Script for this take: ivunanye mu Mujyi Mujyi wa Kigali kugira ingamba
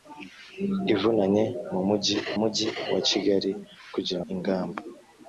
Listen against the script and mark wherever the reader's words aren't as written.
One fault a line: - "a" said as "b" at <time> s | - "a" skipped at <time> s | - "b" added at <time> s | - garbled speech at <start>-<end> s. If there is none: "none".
none